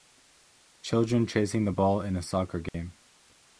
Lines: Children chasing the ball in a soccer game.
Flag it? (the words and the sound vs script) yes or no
yes